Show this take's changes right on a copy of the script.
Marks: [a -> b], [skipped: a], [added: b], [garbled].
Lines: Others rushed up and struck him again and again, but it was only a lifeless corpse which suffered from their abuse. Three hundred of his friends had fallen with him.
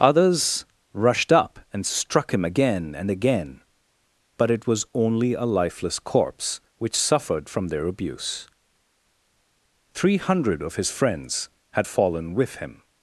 Others rushed up and struck him again and again, but it was only a lifeless corpse which suffered from their abuse. Three hundred of his friends had fallen with him.